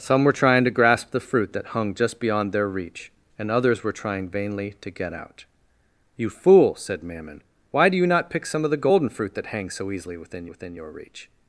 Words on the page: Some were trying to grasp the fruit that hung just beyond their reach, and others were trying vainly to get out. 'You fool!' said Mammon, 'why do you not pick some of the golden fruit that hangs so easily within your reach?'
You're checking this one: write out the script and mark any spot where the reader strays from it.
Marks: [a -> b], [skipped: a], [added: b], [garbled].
Some were trying to grasp the fruit that hung just beyond their reach, and others were trying vainly to get out. 'You fool!' said Mammon, 'why do you not pick some of the golden fruit that hangs so easily within [added: within] your reach?'